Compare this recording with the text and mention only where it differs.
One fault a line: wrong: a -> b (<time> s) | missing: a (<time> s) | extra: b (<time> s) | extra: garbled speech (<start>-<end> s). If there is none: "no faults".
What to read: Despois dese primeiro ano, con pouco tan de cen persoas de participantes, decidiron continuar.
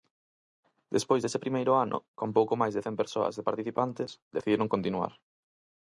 wrong: tan -> máis (2.6 s)